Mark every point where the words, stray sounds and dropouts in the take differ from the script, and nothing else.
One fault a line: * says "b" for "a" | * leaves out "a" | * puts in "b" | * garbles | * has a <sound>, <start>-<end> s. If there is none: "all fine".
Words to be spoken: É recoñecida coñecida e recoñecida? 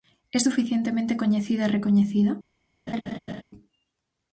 * says "suficientemente" for "recoñecida"
* has a laugh, 2.9-3.4 s